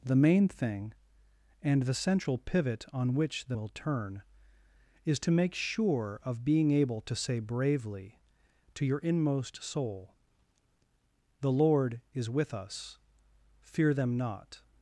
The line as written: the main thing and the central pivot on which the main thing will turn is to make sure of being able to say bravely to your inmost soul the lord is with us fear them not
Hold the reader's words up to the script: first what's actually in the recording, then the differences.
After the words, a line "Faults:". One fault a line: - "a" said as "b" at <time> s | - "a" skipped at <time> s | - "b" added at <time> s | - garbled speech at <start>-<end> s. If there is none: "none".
the main thing and the central pivot on which the will turn is to make sure of being able to say bravely to your inmost soul the lord is with us fear them not
Faults:
- "main thing" skipped at 3.6 s